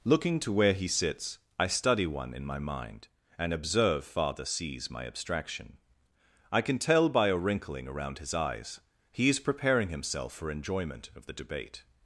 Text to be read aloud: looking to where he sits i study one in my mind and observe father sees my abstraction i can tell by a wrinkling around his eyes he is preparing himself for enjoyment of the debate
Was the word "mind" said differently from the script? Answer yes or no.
no